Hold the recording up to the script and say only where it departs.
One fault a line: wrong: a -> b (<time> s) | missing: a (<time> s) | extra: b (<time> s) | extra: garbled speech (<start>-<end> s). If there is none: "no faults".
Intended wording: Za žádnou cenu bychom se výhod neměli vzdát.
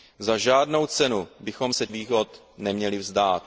no faults